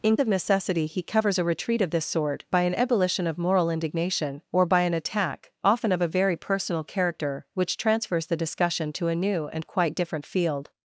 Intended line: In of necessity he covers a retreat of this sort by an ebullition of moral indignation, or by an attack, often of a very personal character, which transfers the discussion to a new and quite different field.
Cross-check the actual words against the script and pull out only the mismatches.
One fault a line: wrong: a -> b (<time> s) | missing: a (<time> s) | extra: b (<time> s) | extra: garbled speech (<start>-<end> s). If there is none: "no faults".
no faults